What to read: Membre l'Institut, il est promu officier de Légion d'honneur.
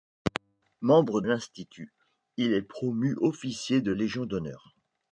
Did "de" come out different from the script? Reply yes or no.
no